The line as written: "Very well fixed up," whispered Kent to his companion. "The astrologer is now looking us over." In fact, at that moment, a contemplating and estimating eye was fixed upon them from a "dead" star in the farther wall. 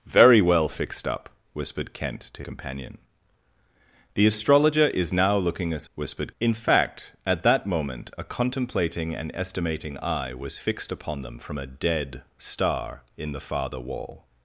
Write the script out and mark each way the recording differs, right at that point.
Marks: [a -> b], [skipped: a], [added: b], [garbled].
"Very well fixed up," whispered Kent to [skipped: his] companion. "The astrologer is now looking us [over." -> whispered] In fact, at that moment, a contemplating and estimating eye was fixed upon them from a "dead" star in the farther wall.